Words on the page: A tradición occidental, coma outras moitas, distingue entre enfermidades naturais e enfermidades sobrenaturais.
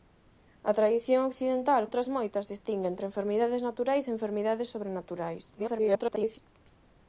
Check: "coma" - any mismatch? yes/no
yes